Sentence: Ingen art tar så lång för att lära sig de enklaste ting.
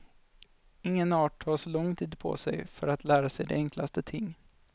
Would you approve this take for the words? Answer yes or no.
no